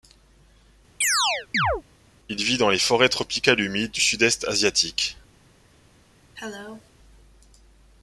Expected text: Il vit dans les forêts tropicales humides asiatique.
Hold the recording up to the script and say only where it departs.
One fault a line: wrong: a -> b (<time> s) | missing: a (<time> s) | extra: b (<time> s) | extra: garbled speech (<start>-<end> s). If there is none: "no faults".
extra: du sud est (3.9 s)